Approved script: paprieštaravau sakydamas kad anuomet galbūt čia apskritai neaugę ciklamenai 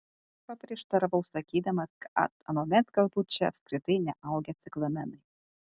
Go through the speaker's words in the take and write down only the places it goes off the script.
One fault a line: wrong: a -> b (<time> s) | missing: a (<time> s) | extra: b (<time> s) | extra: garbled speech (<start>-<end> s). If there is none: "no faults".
no faults